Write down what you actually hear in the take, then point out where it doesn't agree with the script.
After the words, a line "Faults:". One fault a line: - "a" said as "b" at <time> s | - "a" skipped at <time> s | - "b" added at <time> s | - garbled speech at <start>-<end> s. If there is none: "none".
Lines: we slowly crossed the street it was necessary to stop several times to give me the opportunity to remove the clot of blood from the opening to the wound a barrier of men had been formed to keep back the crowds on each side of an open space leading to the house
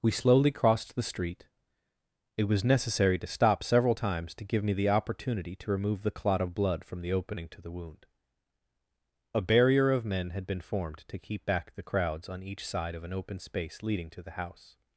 we slowly crossed the street it was necessary to stop several times to give me the opportunity to remove the clot of blood from the opening to the wound a barrier of men had been formed to keep back the crowds on each side of an open space leading to the house
Faults:
none